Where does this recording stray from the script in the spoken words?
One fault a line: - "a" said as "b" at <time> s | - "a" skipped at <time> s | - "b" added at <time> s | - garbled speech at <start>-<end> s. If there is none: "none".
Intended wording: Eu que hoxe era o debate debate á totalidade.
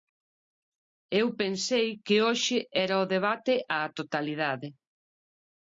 - "pensei" added at 1.4 s
- "debate" skipped at 3.5 s